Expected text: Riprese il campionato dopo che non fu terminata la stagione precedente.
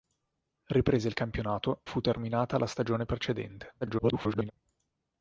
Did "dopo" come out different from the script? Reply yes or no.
yes